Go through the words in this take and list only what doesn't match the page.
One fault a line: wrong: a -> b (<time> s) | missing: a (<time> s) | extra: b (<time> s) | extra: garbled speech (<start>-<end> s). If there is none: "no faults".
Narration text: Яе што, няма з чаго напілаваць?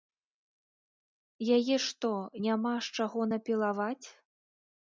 no faults